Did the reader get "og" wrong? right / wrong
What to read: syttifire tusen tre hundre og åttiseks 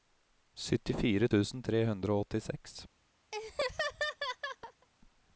right